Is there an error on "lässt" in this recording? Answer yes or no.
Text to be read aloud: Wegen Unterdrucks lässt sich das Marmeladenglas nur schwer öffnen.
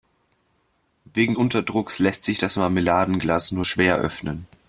no